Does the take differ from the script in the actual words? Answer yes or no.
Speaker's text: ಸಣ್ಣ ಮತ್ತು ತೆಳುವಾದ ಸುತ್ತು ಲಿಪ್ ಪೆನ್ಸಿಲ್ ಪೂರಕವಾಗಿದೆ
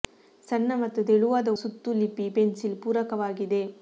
no